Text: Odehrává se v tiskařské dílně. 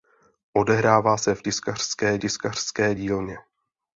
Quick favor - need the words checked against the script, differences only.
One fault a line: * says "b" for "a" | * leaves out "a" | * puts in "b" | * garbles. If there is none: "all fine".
* puts in "tiskařské"